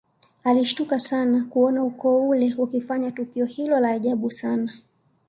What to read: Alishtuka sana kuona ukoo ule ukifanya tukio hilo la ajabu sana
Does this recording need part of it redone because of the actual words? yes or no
no